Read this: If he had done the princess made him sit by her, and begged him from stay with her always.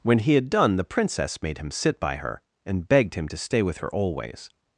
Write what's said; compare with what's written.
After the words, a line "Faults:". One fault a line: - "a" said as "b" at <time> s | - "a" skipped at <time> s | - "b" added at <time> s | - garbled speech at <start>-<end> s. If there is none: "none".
When he had done the princess made him sit by her, and begged him to stay with her always.
Faults:
- "If" said as "When" at 0.0 s
- "from" said as "to" at 3.3 s